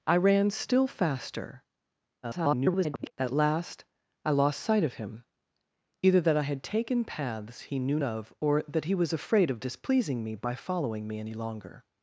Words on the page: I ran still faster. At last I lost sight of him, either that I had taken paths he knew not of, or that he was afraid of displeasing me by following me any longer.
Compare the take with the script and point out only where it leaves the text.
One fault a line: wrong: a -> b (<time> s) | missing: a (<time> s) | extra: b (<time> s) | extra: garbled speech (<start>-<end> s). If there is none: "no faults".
extra: garbled speech (2.2-3.1 s)
missing: not (8.0 s)